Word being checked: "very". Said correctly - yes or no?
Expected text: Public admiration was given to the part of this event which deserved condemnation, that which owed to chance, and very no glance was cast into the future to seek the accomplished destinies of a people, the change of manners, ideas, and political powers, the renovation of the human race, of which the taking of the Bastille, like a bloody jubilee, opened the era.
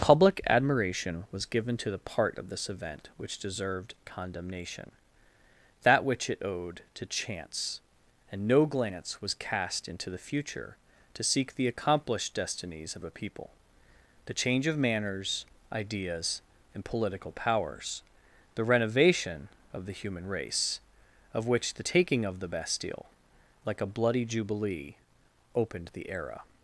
no